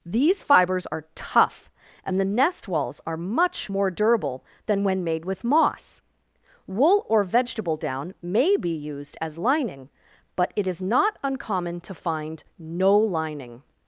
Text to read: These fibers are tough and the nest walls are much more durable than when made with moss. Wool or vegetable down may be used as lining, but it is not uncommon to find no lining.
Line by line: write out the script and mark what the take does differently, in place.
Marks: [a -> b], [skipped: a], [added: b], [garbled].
These fibers are tough and the nest walls are much more durable than when made with moss. Wool or vegetable down may be used as lining, but it is not uncommon to find no lining.